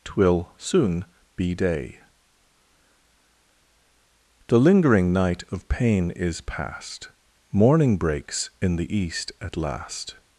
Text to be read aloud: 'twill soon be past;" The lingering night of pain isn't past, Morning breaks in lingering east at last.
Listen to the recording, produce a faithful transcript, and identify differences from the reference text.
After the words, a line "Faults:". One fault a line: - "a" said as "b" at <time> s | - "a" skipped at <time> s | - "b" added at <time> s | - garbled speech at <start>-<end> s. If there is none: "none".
'twill soon be day;" The lingering night of pain is past, Morning breaks in the east at last.
Faults:
- "past" said as "day" at 1.5 s
- "isn't" said as "is" at 6.1 s
- "lingering" said as "the" at 8.8 s